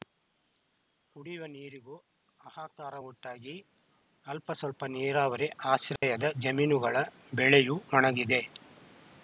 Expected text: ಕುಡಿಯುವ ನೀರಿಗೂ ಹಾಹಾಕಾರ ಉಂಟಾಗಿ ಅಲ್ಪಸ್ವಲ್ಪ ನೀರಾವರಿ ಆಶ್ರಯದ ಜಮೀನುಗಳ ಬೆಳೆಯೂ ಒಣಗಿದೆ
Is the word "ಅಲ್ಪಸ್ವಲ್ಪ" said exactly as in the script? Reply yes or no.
yes